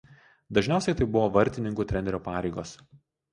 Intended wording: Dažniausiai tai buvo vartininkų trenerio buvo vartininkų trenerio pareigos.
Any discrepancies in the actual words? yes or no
yes